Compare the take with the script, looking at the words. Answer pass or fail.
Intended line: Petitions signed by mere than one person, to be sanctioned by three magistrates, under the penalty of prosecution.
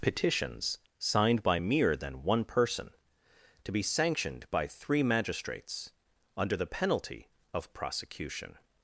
pass